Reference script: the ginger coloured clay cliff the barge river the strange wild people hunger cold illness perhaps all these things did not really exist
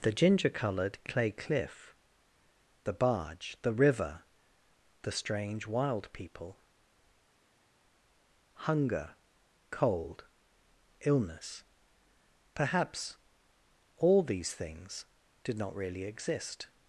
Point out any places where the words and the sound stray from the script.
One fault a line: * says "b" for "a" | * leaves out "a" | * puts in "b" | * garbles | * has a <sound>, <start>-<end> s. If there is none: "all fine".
* puts in "the"